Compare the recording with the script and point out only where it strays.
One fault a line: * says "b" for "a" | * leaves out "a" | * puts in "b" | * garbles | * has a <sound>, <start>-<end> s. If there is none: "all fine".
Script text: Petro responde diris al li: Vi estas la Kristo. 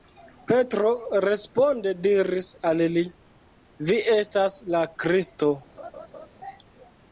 * has a laugh, 5.8-6.3 s